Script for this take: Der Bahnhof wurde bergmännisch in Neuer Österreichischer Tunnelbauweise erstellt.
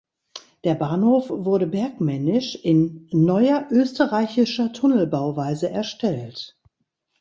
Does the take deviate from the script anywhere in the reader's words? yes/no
no